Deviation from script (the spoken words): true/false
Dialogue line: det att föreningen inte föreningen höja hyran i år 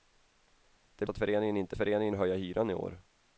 false